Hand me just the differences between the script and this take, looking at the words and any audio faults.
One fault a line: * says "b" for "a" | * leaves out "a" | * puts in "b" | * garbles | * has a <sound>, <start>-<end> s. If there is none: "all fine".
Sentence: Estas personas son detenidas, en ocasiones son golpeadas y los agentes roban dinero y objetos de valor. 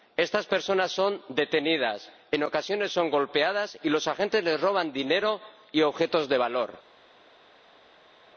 * puts in "les"